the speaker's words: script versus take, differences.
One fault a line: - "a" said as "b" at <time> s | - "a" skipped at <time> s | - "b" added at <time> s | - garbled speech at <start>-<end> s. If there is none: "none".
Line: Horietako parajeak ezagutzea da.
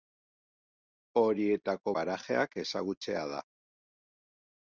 none